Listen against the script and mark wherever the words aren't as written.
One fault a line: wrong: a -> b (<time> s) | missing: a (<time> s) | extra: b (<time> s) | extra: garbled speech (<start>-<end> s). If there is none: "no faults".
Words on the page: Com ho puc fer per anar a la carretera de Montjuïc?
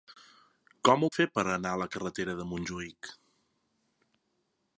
missing: puc (1.1 s)